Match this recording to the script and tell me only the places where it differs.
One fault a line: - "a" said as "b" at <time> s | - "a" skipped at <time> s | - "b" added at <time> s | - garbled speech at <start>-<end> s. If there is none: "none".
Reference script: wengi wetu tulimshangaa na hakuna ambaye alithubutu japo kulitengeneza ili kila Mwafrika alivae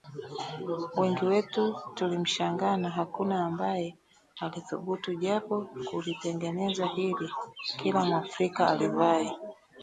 none